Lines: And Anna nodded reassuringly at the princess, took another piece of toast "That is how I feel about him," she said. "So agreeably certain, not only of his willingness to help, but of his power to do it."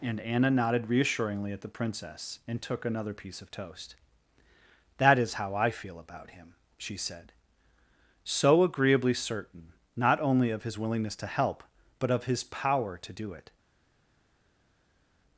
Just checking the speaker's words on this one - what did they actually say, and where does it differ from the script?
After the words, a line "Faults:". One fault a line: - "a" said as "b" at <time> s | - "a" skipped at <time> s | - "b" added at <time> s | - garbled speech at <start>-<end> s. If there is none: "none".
And Anna nodded reassuringly at the princess, and took another piece of toast "That is how I feel about him," she said. "So agreeably certain, not only of his willingness to help, but of his power to do it."
Faults:
- "and" added at 2.5 s